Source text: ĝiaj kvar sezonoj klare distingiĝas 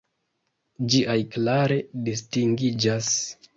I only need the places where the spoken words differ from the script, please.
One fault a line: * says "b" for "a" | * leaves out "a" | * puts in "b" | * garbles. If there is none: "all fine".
* leaves out "kvar sezonoj"